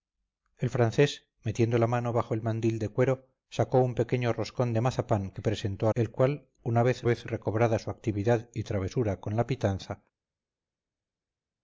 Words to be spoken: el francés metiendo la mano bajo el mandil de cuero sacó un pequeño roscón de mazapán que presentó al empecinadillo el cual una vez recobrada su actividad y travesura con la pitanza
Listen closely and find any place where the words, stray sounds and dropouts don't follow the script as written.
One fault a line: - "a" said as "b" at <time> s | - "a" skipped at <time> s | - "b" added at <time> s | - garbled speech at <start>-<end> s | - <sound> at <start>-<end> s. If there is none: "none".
- "al empecinadillo" skipped at 5.9 s
- "vez" added at 7.0 s